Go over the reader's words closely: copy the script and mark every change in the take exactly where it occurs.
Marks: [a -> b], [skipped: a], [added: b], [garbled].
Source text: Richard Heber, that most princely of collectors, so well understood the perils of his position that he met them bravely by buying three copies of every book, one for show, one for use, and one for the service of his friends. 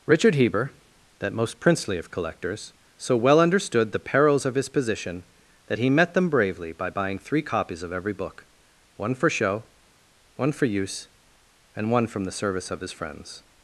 Richard Heber, that most princely of collectors, so well understood the perils of his position that he met them bravely by buying three copies of every book, one for show, one for use, and one [for -> from] the service of his friends.